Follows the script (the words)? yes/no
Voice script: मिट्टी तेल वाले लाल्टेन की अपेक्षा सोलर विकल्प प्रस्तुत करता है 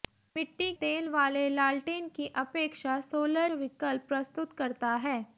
yes